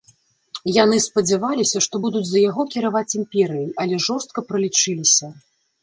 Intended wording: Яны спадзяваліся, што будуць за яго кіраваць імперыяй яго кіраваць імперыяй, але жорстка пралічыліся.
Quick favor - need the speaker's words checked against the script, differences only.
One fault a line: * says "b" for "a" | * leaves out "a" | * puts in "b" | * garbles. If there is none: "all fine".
* leaves out "яго кіраваць імперыяй"